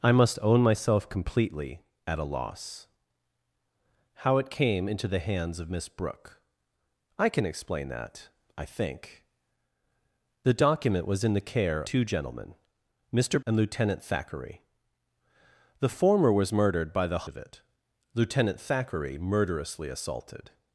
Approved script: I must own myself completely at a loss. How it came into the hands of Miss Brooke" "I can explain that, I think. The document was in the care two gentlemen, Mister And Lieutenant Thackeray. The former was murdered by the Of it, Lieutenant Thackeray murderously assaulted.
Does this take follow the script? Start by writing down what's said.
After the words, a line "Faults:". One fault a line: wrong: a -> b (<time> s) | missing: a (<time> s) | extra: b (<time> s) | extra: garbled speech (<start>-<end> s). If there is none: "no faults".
I must own myself completely at a loss. How it came into the hands of Miss Brooke" "I can explain that, I think. The document was in the care two gentlemen, Mister And Lieutenant Thackeray. The former was murdered by the Of it, Lieutenant Thackeray murderously assaulted.
Faults:
no faults